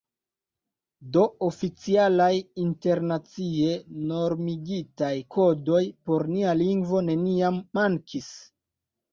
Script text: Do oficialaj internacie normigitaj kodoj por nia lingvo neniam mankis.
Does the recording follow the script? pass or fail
pass